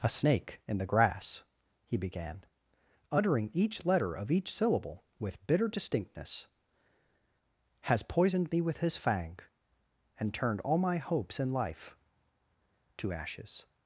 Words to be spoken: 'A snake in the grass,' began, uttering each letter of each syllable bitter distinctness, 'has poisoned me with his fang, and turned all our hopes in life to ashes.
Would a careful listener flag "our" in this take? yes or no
yes